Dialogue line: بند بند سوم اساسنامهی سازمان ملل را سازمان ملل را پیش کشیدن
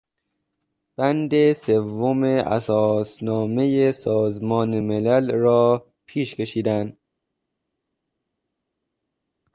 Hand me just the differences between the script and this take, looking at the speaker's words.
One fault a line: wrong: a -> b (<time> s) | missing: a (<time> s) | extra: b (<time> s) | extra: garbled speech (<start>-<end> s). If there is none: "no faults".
missing: بند (1.5 s)
missing: سازمان ملل را (5.8 s)